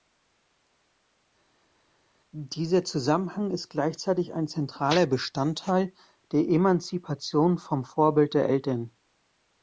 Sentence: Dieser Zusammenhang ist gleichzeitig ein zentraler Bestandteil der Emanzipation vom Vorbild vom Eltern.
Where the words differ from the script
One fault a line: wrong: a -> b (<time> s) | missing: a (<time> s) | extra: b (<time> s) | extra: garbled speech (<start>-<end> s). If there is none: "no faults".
wrong: vom -> der (8.3 s)